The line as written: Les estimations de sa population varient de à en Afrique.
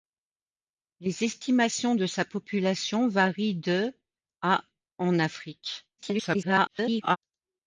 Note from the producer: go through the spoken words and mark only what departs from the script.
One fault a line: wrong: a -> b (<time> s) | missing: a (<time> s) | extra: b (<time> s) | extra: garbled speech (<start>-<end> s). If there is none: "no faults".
extra: garbled speech (6.0-7.2 s)